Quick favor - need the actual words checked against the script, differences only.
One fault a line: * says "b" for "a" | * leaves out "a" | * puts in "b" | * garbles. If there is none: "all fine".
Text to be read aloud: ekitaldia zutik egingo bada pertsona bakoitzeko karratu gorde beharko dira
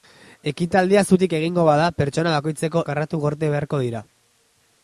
all fine